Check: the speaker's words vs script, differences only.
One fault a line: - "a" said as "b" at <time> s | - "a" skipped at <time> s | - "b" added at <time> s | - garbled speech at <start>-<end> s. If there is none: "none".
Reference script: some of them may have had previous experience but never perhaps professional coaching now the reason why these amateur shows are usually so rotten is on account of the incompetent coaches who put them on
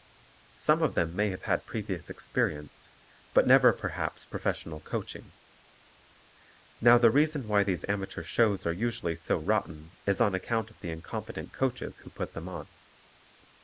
none